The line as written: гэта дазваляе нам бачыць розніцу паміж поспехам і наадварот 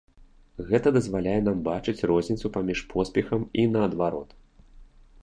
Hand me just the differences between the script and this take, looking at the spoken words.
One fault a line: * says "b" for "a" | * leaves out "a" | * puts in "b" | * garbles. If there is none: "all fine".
all fine